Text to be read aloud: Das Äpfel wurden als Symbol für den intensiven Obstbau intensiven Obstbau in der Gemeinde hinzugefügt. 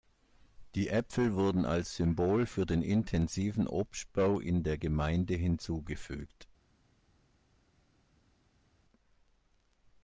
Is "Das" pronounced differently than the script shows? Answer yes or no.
yes